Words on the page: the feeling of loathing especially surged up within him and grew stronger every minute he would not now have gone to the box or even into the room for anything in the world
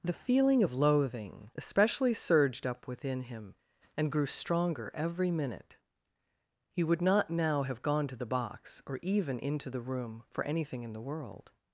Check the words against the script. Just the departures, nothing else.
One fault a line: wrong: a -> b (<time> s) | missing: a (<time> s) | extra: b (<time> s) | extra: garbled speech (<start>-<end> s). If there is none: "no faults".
no faults